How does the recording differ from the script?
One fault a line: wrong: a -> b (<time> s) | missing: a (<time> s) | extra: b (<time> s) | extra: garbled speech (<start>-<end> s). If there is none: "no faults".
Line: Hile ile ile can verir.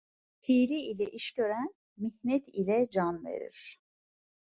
extra: iş gören mihnet (1.1 s)